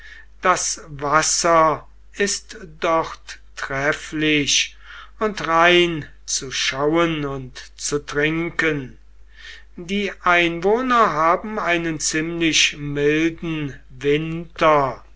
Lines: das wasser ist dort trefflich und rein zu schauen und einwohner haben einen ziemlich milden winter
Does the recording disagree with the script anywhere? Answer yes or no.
yes